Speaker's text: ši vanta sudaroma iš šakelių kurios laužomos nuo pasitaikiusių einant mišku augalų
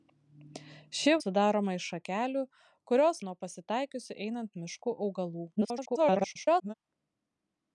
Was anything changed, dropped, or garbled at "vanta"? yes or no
yes